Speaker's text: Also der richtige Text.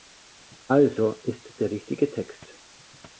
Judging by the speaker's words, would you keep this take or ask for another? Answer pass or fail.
fail